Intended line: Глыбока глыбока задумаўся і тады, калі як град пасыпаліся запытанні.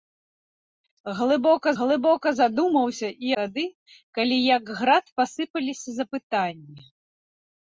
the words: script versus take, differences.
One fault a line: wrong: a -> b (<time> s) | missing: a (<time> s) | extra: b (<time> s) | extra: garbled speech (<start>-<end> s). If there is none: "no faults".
no faults